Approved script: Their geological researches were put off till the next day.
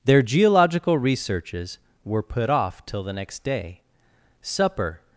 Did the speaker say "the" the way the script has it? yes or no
yes